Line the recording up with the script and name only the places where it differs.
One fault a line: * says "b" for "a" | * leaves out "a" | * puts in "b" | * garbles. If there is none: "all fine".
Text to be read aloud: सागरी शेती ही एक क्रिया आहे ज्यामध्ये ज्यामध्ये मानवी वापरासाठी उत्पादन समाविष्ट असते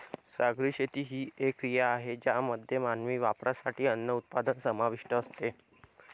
* leaves out "ज्यामध्ये"
* puts in "अन्न"